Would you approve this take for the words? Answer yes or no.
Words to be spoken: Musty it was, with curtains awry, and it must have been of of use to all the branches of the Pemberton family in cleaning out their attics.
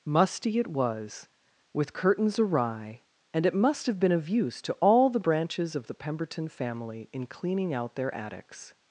no